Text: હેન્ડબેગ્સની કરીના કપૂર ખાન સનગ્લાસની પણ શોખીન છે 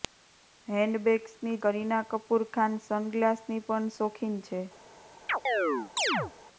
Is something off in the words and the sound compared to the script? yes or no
yes